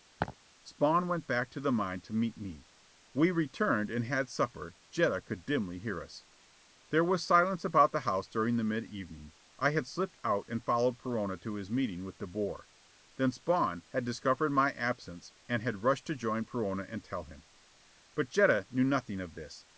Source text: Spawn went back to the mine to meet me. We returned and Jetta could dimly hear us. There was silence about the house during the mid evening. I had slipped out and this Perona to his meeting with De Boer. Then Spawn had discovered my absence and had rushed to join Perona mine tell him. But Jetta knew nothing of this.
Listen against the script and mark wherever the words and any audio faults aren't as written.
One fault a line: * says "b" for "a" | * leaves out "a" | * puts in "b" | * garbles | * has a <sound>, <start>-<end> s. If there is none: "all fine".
* has a laugh, 0.2-0.4 s
* puts in "had supper"
* says "followed" for "this"
* says "and" for "mine"